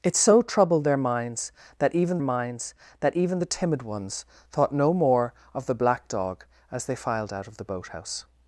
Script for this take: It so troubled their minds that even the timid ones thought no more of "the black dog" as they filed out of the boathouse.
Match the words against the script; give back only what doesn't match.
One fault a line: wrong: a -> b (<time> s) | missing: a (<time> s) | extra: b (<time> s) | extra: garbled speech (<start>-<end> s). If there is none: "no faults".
extra: minds that even (2.2 s)